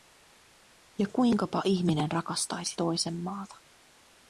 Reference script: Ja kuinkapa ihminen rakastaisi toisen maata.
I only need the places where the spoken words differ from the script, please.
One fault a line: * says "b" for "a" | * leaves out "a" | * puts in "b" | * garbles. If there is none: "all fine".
all fine